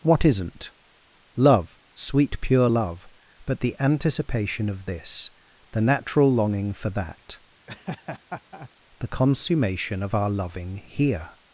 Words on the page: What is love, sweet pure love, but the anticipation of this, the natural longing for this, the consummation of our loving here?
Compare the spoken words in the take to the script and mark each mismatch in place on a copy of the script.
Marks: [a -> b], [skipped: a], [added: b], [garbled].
What [is -> isn't] love, sweet pure love, but the anticipation of this, the natural longing for [this, -> that] the consummation of our loving here?